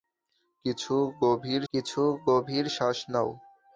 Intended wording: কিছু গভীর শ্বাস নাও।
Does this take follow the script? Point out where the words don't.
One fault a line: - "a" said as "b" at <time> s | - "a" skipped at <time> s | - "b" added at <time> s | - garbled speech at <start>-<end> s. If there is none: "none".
- "কিছু গভীর" added at 1.7 s